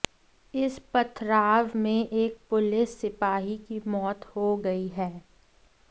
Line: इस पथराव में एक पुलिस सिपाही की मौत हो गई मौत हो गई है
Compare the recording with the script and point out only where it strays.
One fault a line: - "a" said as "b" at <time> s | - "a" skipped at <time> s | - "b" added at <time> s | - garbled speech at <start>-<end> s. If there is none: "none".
- "मौत हो गई" skipped at 4.9 s